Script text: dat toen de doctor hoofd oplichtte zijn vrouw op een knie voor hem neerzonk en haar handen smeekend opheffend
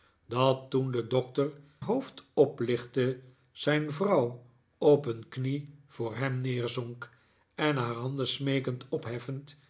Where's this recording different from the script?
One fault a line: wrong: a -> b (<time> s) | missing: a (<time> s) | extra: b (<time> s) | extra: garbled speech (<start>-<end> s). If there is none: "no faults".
no faults